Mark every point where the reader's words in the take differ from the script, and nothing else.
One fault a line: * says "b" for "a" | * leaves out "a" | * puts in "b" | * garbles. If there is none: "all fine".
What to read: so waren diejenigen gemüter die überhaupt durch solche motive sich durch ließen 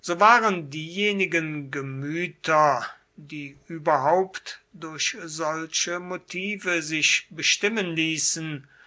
* says "bestimmen" for "durch"